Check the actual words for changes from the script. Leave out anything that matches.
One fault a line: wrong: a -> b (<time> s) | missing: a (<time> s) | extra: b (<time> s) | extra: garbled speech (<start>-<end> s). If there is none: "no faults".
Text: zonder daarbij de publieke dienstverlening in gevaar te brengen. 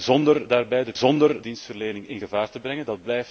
wrong: publieke -> zonder (1.0 s)